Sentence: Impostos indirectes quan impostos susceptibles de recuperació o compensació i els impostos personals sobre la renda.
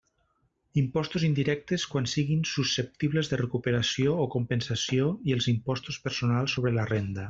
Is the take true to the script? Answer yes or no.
no